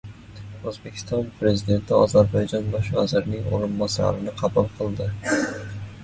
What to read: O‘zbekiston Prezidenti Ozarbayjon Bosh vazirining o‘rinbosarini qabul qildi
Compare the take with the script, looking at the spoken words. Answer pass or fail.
pass